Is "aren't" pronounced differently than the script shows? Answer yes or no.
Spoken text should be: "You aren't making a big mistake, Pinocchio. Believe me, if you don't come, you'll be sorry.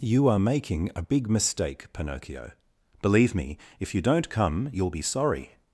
yes